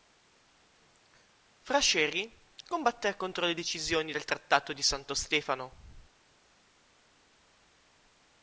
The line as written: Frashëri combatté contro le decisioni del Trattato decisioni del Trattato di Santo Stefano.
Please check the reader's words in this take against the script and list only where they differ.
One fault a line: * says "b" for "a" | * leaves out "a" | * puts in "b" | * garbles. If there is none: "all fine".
* leaves out "decisioni del Trattato"